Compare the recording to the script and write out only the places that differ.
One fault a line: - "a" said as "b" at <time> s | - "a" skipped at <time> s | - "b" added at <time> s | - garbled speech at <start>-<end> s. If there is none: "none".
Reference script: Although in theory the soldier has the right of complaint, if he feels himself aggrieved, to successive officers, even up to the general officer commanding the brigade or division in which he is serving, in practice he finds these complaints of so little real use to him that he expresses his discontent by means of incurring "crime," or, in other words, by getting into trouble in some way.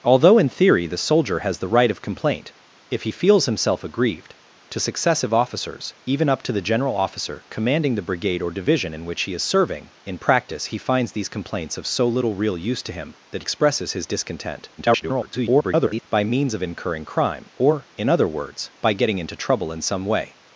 - "he" skipped at 13.4 s
- garbled speech at 14.8-16.0 s